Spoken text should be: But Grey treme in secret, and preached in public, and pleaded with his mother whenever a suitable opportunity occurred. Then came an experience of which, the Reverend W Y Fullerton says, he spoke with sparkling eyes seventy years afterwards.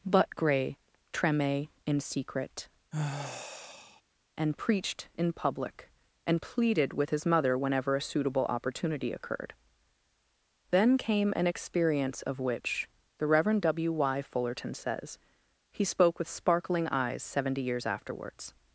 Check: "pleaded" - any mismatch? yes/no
no